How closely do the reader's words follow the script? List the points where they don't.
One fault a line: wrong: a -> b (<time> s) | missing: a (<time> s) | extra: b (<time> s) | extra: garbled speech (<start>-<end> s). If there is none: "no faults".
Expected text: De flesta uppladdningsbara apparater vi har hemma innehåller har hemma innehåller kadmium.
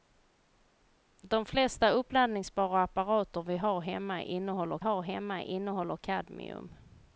no faults